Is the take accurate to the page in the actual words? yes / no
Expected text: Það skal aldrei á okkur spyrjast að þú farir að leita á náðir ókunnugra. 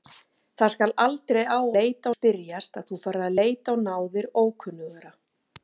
no